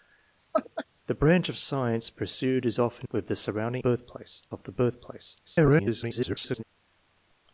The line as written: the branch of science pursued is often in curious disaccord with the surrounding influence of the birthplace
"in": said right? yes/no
no